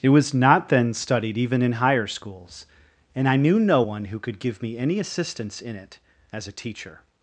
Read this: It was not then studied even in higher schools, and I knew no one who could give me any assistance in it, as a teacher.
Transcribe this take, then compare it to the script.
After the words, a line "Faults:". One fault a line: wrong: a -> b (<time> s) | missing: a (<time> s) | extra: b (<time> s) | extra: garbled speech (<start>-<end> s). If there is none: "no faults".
It was not then studied even in higher schools, and I knew no one who could give me any assistance in it, as a teacher.
Faults:
no faults